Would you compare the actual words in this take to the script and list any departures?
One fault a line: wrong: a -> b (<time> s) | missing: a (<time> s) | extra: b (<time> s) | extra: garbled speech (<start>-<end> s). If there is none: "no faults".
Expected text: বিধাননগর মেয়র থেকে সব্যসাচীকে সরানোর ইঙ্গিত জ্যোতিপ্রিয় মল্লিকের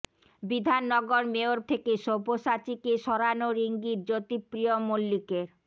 no faults